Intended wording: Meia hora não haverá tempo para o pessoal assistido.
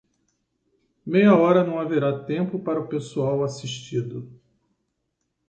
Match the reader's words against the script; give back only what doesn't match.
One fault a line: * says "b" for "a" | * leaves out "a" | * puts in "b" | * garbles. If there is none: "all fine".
all fine